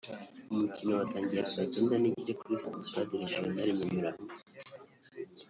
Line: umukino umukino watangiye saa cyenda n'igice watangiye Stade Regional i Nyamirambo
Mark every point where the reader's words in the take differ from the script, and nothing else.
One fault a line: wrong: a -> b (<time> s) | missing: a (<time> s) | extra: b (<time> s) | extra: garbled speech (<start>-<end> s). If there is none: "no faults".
missing: umukino (0.9 s)
wrong: watangiye -> kuri (2.4 s)